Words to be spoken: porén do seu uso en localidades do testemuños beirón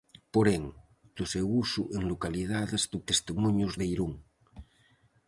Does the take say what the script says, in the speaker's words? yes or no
yes